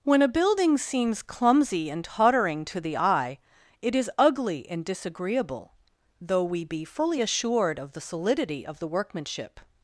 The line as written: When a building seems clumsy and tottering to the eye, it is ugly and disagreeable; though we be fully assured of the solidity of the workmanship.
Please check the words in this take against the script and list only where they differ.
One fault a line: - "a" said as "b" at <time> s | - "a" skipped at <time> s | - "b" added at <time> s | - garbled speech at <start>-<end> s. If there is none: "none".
none